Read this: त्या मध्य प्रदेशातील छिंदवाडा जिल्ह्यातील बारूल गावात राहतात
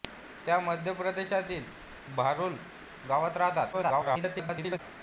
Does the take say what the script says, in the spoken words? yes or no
no